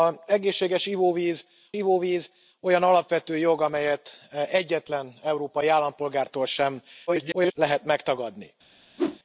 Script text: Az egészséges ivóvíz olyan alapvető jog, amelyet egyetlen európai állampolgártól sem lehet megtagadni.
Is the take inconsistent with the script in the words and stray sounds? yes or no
yes